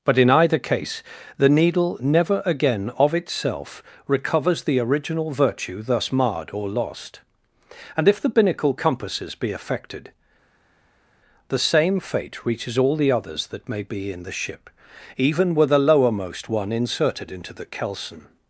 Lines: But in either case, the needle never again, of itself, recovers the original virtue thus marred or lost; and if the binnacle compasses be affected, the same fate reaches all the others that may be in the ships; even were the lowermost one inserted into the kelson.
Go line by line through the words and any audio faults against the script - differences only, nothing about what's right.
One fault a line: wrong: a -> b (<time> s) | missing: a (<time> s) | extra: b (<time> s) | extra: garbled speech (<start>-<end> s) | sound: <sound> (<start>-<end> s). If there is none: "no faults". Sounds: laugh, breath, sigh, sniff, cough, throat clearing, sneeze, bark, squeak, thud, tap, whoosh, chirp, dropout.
wrong: ships -> ship (14.3 s)